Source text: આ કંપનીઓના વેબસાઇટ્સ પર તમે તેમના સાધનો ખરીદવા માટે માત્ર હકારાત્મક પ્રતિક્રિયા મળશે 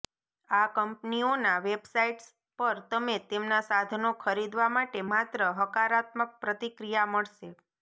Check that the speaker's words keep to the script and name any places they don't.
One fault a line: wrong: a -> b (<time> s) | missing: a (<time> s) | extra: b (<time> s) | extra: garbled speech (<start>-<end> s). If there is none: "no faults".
no faults